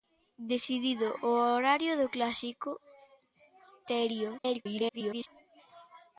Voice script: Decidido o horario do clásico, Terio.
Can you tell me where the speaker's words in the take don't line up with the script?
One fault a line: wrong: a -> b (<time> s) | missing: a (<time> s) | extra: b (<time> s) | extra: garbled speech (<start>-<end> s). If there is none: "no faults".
extra: garbled speech (4.4-5.3 s)